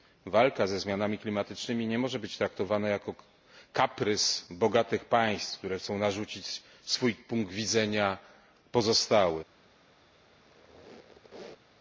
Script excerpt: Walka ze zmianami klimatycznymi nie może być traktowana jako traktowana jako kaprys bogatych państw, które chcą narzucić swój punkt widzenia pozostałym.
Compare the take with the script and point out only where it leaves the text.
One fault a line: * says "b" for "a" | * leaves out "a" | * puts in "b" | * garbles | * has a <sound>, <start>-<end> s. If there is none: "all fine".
* leaves out "traktowana jako"
* has a squeak, 10.3-11.8 s